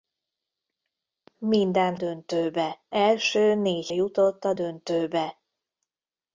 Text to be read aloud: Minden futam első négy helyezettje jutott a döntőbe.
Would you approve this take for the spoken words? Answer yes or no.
no